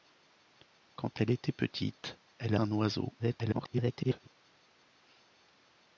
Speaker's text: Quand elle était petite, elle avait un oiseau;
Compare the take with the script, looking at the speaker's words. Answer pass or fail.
fail